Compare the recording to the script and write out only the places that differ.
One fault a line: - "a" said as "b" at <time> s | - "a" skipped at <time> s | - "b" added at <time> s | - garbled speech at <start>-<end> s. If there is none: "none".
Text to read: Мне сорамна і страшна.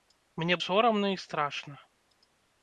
none